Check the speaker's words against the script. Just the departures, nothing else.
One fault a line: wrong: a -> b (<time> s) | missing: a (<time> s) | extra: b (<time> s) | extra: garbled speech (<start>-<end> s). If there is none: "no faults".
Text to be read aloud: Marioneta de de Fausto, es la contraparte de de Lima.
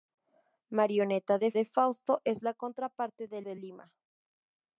no faults